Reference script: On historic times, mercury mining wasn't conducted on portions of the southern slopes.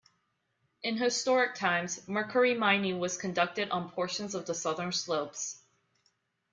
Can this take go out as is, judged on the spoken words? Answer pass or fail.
fail